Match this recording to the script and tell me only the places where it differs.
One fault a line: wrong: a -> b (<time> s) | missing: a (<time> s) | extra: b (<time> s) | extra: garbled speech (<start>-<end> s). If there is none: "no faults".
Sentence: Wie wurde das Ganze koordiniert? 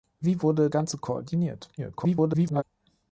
missing: das (0.7 s)
extra: garbled speech (1.8-2.6 s)